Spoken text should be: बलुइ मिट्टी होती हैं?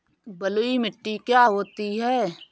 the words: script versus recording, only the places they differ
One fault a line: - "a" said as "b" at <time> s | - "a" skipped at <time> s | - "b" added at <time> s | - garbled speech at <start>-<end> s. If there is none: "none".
- "क्या" added at 1.2 s